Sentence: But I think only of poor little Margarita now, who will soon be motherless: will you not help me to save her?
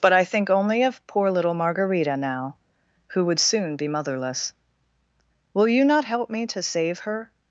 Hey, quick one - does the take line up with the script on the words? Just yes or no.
no